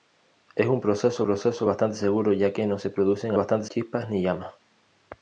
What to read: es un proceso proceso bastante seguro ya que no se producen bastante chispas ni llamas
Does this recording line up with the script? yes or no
yes